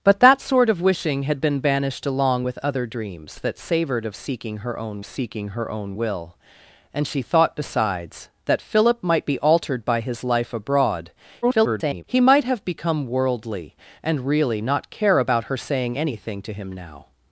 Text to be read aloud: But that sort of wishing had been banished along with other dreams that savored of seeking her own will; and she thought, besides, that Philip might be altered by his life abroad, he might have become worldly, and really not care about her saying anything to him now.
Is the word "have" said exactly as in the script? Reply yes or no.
yes